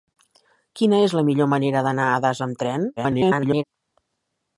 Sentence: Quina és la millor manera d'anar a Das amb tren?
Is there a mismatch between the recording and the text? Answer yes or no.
yes